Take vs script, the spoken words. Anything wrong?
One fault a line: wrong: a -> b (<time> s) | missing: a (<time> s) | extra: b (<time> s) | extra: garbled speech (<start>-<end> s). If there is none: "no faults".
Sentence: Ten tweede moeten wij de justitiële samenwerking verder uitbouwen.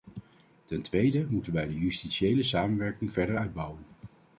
no faults